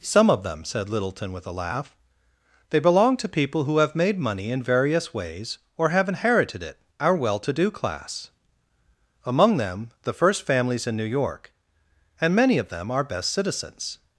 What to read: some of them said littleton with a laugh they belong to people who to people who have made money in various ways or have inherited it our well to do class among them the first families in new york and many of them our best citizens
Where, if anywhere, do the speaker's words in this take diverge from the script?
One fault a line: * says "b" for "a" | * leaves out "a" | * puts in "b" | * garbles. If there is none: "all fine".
* leaves out "to people who"